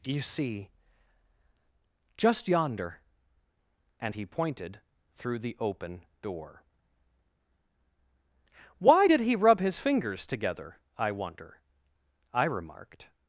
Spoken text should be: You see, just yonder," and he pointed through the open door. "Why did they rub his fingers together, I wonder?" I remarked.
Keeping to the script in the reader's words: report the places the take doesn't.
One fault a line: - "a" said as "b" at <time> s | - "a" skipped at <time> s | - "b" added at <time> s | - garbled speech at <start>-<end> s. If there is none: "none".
- "they" said as "he" at 9.2 s